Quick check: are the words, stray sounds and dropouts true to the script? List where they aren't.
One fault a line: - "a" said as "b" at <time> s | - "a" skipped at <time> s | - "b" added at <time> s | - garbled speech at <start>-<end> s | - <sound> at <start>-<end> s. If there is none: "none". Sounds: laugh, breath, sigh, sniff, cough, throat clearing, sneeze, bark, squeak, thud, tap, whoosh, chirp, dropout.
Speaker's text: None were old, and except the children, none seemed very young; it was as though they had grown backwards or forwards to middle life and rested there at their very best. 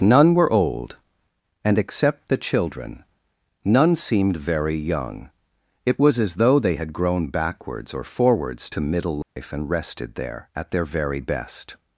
- dropout at 9.2-9.4 s